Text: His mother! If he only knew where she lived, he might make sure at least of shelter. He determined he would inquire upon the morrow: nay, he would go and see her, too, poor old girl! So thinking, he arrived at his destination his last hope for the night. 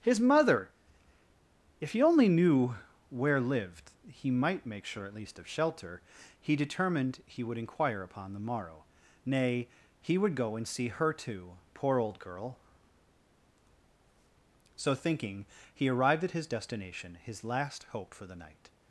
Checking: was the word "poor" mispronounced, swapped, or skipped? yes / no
no